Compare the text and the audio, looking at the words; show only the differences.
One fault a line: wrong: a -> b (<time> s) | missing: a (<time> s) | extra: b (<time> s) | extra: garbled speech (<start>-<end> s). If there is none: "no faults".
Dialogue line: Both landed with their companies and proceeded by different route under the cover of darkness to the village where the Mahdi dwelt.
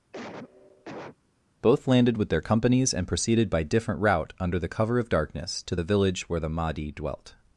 no faults